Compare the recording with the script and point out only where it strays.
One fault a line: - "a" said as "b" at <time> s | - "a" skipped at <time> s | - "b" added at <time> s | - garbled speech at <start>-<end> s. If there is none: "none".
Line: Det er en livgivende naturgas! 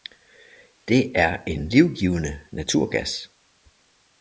none